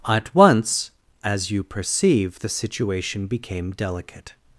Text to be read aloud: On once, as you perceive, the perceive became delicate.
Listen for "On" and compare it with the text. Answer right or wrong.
wrong